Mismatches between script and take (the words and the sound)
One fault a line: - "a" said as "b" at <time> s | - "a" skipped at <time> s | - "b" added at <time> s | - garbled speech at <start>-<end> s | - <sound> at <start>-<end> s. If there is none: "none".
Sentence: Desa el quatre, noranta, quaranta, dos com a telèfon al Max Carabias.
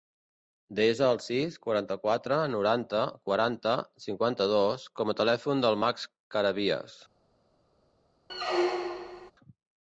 - "sis quaranta" added at 1.2 s
- "cinquanta" added at 4.1 s
- "al" said as "del" at 5.7 s
- squeak at 8.3-9.3 s